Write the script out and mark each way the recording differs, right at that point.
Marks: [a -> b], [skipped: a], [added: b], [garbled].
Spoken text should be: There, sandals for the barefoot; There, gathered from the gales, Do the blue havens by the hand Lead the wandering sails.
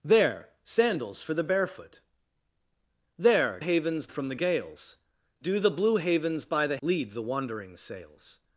There, sandals for the barefoot; There, [gathered -> havens] from the gales, Do the blue havens by the [skipped: hand] Lead the wandering sails.